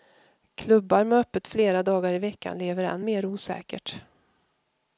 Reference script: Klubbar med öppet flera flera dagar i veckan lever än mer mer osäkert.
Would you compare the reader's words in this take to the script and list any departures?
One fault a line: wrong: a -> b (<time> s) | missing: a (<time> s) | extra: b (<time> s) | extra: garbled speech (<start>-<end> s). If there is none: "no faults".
missing: flera (1.8 s)
missing: mer (3.3 s)